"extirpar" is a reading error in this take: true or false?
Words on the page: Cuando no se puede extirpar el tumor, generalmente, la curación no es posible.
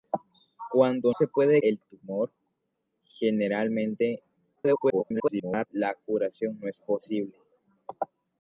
true